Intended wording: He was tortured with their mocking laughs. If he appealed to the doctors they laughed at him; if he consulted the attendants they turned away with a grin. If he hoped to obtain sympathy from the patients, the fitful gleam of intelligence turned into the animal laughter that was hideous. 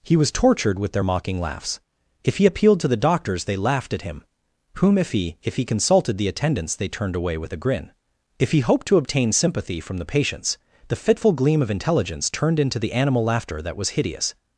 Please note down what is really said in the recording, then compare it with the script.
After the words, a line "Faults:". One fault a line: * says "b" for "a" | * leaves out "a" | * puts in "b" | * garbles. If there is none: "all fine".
He was tortured with their mocking laughs. If he appealed to the doctors they laughed at him; whom if he if he consulted the attendants they turned away with a grin. If he hoped to obtain sympathy from the patients, the fitful gleam of intelligence turned into the animal laughter that was hideous.
Faults:
* puts in "whom if he"